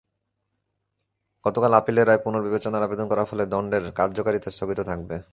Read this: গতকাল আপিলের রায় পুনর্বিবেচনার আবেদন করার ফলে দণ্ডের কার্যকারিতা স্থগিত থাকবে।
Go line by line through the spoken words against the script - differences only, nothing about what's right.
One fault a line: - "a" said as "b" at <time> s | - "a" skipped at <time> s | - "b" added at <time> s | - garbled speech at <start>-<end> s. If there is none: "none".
none